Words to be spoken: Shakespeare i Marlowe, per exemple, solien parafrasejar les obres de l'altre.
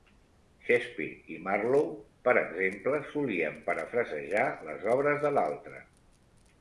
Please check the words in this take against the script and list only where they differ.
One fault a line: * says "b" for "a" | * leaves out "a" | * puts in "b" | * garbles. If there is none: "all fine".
all fine